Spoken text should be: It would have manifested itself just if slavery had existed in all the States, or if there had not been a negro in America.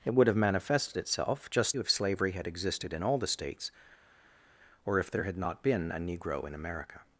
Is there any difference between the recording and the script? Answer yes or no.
no